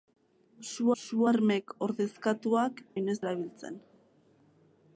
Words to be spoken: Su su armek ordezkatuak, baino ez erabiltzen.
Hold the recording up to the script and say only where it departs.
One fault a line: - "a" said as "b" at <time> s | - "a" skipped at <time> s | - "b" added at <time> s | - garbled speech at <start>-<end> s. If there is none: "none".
none